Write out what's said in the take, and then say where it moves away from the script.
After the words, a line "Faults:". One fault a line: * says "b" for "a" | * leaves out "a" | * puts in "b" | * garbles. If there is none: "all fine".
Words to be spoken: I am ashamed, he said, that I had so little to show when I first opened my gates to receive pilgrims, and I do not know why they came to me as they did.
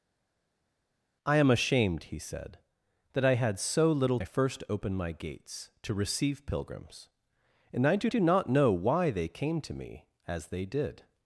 I am ashamed, he said, that I had so little I first opened my gates to receive pilgrims, and I do do not know why they came to me as they did.
Faults:
* leaves out "to show when"
* puts in "do"